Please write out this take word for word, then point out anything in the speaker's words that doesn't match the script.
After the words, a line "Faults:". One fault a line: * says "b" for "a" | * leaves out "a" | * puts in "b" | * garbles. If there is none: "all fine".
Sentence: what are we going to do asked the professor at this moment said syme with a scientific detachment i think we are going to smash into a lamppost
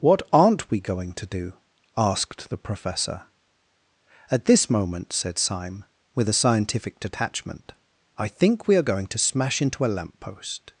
what aren't we going to do asked the professor at this moment said syme with a scientific detachment i think we are going to smash into a lamppost
Faults:
* says "aren't" for "are"